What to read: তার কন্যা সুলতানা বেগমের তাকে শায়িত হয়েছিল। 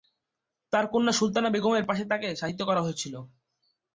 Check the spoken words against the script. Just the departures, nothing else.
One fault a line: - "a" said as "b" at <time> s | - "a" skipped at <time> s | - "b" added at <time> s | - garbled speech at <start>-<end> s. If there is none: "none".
- "পাশে" added at 1.9 s
- "করা" added at 2.7 s